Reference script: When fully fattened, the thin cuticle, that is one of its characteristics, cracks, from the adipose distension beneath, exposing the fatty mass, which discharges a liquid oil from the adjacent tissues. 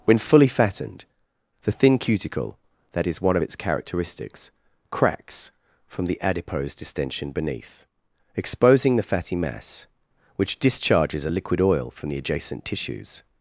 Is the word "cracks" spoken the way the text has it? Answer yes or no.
yes